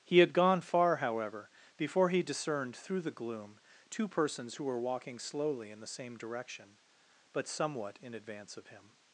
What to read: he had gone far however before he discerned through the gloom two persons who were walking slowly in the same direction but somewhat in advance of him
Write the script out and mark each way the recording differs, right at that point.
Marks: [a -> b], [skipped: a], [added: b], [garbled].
he had gone far however before he discerned through the gloom two persons who were walking slowly in the same direction but somewhat in advance of him